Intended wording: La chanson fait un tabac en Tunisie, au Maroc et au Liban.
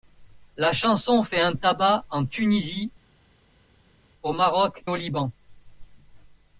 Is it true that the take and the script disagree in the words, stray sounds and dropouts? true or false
true